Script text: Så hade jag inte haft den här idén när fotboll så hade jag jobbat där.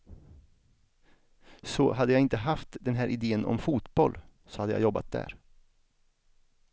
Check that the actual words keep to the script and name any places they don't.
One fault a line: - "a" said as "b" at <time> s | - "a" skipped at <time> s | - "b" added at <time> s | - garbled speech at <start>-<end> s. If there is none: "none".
- "när" said as "om" at 3.5 s